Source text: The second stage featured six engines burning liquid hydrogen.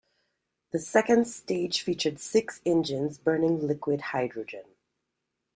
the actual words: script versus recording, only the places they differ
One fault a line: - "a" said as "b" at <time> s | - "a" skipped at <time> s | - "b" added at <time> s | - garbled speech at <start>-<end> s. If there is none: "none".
none